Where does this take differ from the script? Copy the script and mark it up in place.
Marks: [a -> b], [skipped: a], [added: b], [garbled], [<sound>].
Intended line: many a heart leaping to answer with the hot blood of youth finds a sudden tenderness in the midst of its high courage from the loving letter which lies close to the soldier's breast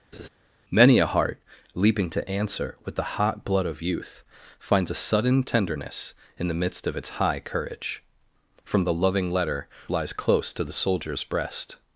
[laugh] many a heart leaping to answer with the hot blood of youth finds a sudden tenderness in the midst of its high courage from the loving letter [skipped: which] lies close to the soldier's breast